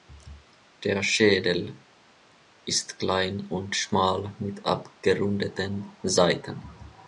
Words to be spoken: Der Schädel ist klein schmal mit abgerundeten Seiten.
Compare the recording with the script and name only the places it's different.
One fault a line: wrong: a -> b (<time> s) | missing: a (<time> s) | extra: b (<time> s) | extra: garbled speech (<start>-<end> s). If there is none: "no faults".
extra: und (3.5 s)